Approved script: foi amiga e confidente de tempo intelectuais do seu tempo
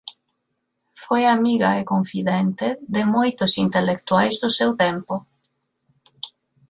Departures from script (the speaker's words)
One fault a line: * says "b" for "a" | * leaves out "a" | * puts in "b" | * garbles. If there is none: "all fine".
* says "moitos" for "tempo"